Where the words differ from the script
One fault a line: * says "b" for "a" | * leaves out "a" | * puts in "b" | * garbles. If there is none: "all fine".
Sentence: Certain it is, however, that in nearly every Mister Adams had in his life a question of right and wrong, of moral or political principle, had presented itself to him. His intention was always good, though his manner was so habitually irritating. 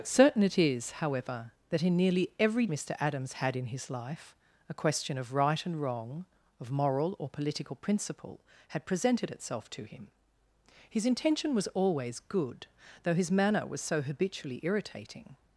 all fine